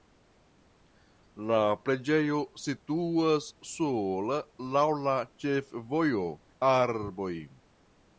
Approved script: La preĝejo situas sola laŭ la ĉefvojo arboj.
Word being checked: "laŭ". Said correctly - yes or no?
yes